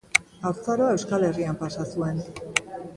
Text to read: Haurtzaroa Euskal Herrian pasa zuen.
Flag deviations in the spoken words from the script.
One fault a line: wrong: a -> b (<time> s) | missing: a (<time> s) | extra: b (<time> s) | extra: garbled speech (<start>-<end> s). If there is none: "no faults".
no faults